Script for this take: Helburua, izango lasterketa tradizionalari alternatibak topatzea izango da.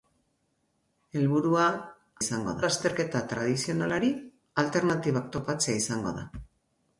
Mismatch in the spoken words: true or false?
false